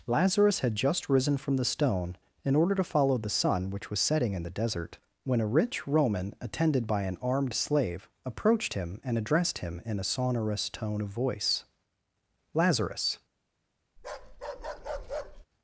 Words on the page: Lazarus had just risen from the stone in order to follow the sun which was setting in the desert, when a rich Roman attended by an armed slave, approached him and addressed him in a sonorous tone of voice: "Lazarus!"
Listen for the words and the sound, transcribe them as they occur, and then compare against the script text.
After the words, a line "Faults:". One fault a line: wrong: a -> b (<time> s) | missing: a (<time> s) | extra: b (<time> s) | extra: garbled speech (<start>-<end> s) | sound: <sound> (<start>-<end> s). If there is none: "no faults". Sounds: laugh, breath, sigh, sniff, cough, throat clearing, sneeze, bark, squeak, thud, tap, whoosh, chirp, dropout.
Lazarus had just risen from the stone in order to follow the sun which was setting in the desert, when a rich Roman attended by an armed slave, approached him and addressed him in a sonorous tone of voice: "Lazarus!"
Faults:
sound: bark (14.0-15.5 s)